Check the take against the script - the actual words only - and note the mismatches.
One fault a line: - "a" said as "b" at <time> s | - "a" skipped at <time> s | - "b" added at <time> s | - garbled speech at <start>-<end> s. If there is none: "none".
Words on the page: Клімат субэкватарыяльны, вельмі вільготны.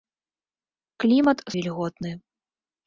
- "субэкватарыяльны вельмі" skipped at 1.4 s